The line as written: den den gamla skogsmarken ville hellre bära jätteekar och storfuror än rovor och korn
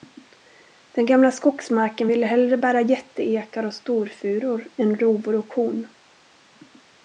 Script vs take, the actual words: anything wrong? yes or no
yes